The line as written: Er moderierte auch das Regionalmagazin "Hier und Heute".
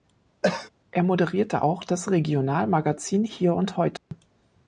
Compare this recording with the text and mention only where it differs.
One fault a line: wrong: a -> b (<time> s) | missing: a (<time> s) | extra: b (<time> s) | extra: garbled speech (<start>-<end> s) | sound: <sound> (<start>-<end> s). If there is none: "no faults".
sound: cough (0.4-0.7 s)
sound: dropout (4.0-4.1 s)